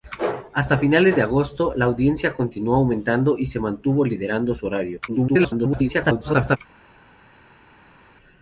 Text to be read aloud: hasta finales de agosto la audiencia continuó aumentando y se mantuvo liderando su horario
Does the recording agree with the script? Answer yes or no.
no